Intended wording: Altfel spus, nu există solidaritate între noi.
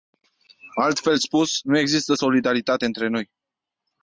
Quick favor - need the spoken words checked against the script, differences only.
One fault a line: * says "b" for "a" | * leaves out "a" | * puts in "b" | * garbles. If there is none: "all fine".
all fine